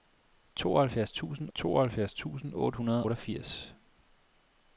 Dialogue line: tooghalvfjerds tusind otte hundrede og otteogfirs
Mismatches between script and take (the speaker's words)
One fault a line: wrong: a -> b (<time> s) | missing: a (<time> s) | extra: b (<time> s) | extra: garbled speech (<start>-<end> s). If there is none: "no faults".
extra: tooghalvfjerds tusind (1.5 s)
missing: og (3.1 s)